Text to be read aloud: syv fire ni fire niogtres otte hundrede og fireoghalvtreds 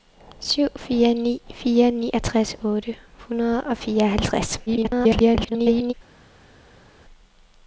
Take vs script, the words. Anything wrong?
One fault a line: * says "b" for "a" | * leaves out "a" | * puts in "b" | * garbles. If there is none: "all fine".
* garbles